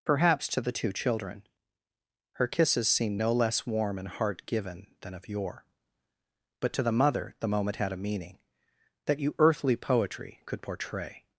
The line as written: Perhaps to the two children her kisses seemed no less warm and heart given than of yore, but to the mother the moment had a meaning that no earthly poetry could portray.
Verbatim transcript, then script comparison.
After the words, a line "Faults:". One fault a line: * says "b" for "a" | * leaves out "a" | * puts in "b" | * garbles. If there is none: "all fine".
Perhaps to the two children her kisses seemed no less warm and heart given than of yore, but to the mother the moment had a meaning that you earthly poetry could portray.
Faults:
* says "you" for "no"